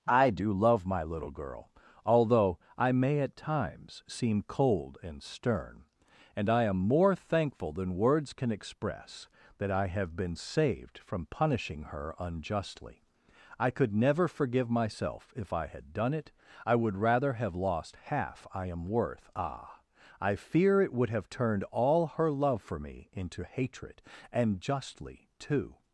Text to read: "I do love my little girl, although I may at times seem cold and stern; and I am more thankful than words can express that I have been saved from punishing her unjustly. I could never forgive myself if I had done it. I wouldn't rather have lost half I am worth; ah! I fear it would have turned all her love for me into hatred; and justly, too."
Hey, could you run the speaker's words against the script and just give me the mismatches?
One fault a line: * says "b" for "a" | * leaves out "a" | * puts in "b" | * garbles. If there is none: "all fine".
* says "would" for "wouldn't"